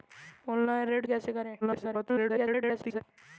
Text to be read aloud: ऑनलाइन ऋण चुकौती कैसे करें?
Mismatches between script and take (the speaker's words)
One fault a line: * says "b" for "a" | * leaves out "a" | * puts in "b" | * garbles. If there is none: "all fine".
* leaves out "चुकौती"
* garbles